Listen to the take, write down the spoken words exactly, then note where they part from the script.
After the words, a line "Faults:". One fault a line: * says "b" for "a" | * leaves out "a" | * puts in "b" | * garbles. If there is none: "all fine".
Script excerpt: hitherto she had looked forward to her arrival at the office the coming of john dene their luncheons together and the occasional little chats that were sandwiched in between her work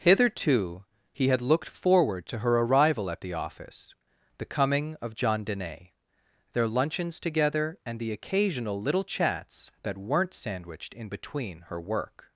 hitherto he had looked forward to her arrival at the office the coming of john dene their luncheons together and the occasional little chats that weren't sandwiched in between her work
Faults:
* says "he" for "she"
* says "weren't" for "were"